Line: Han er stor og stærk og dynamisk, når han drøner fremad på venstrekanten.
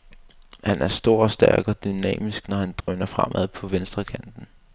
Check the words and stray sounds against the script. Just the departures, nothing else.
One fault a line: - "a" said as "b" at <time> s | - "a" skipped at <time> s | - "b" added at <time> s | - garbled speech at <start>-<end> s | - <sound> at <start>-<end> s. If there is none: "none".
- dropout at 2.8-2.9 s